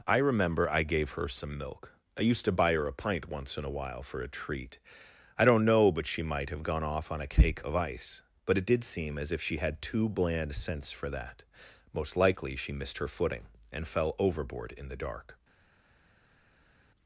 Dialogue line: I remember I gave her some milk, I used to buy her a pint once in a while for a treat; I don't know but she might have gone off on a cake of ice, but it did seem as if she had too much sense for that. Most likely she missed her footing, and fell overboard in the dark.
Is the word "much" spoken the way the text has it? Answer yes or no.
no